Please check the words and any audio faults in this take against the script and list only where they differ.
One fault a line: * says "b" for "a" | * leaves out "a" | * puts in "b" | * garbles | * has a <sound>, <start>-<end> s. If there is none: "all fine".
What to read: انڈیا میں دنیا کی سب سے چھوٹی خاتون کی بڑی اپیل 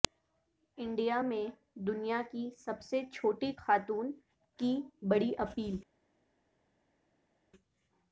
all fine